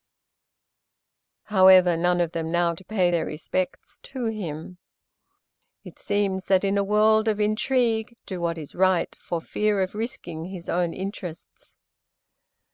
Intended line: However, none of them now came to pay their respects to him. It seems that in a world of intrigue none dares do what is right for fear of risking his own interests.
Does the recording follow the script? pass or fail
fail